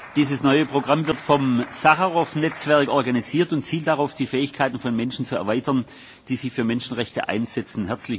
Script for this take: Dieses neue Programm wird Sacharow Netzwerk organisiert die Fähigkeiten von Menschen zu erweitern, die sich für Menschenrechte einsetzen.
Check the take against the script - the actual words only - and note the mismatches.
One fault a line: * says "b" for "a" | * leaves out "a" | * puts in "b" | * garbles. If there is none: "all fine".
* puts in "vom"
* puts in "und zielt darauf"